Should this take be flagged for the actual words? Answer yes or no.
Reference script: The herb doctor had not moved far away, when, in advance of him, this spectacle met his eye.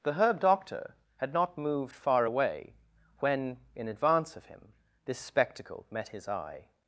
no